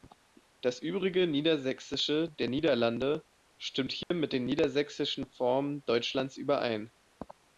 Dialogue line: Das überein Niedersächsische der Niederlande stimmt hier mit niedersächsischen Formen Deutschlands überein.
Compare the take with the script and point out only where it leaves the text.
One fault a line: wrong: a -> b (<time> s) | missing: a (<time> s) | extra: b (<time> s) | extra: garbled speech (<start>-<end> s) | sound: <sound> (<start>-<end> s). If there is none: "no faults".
wrong: überein -> übrige (0.8 s)
sound: dropout (4.0-4.1 s)
extra: den (4.3 s)